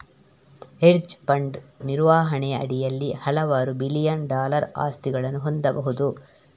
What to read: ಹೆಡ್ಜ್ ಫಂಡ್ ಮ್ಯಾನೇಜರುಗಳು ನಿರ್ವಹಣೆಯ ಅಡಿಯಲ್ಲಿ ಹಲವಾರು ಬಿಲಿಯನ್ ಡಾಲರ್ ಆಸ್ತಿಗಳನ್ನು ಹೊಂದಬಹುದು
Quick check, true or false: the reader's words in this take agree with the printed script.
false